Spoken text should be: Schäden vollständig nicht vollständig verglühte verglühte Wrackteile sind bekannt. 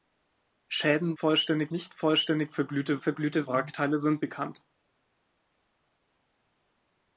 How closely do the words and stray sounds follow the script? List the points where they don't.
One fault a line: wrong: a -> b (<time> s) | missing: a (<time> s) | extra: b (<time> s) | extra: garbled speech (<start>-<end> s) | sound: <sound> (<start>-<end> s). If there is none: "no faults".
no faults